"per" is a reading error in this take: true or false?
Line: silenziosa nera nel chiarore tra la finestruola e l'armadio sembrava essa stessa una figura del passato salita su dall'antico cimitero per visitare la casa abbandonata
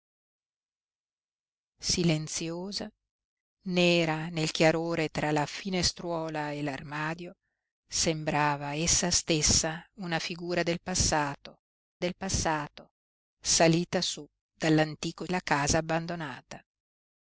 true